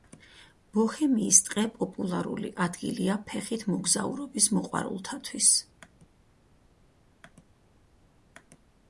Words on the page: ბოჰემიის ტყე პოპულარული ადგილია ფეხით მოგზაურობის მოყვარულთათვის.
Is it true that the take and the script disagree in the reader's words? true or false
false